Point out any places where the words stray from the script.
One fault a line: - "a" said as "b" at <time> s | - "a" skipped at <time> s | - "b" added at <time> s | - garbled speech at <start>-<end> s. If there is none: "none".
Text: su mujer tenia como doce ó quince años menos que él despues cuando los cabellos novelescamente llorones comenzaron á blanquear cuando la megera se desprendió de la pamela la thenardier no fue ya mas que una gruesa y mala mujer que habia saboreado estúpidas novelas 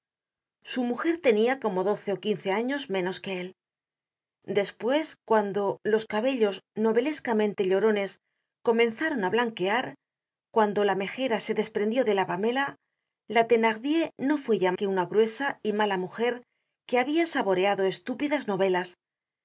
- "mas" skipped at 14.7 s